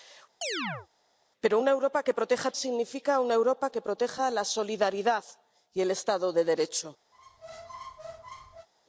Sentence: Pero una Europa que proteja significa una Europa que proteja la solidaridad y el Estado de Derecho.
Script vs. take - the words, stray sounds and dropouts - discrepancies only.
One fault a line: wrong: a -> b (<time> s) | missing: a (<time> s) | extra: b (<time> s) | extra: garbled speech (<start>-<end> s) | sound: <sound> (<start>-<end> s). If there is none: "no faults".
sound: chirp (0.4-0.9 s)
sound: squeak (7.1-8.7 s)